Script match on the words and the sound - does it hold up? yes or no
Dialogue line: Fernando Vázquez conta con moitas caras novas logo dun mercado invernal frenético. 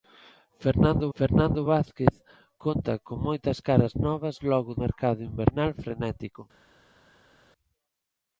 no